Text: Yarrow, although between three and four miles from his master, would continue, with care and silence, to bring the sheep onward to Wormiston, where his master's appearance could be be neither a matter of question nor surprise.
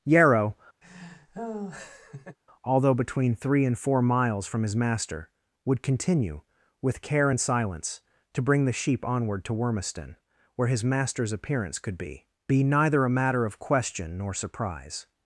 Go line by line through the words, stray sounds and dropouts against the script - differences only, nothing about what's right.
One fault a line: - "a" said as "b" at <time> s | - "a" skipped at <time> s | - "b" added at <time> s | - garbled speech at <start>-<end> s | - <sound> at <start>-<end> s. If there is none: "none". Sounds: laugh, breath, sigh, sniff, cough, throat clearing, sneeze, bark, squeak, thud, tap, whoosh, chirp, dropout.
- laugh at 0.8-2.4 s